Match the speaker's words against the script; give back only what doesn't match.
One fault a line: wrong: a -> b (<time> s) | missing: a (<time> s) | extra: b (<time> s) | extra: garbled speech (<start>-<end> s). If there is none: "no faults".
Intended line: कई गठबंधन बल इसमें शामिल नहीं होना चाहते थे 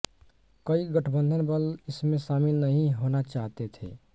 no faults